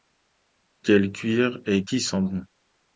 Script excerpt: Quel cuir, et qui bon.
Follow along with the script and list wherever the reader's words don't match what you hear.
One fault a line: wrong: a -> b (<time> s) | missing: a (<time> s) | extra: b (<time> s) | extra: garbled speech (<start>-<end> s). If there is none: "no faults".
extra: sent (2.0 s)